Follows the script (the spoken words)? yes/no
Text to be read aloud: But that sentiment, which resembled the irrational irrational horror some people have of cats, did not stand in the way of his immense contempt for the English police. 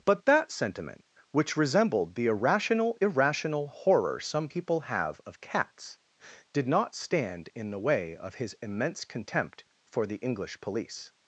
yes